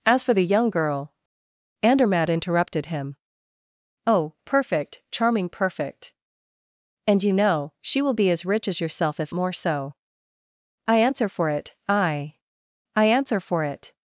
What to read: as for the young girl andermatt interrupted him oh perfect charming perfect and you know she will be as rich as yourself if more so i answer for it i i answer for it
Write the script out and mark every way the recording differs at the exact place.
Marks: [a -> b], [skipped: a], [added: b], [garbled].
as for the young girl andermatt interrupted him oh perfect charming perfect and you know she will be as rich as yourself if more so i answer for it i i answer for it